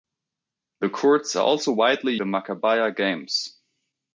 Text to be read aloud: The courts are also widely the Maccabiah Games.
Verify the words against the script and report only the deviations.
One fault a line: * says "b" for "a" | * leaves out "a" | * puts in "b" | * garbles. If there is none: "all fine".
all fine